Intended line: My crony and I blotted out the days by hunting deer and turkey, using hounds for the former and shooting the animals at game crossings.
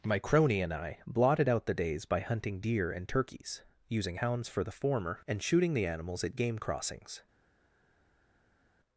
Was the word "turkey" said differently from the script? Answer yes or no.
yes